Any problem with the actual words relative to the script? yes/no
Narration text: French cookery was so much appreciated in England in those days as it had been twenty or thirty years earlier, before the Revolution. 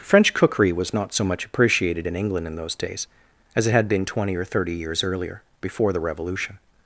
yes